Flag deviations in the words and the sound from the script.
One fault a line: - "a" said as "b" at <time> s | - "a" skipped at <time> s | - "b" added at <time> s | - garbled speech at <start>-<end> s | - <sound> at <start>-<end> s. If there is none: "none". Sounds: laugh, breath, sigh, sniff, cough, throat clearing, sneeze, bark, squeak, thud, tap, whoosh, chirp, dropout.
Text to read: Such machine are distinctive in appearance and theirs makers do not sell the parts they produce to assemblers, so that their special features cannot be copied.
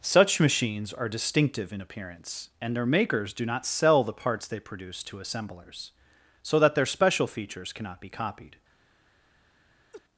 - "machine" said as "machines" at 0.4 s
- "theirs" said as "their" at 2.8 s
- laugh at 9.9-10.0 s